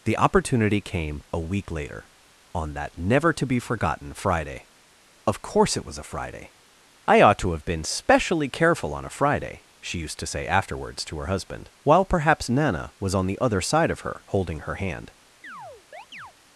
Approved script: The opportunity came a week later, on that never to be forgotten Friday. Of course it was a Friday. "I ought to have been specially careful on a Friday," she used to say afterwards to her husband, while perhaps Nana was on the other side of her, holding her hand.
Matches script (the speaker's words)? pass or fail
pass